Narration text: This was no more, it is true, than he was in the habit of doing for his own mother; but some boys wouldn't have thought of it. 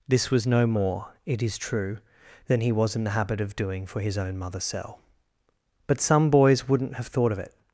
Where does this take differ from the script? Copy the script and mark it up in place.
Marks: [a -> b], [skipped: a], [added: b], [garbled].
This was no more, it is true, than he was in the habit of doing for his own mother; [added: cell] but some boys wouldn't have thought of it.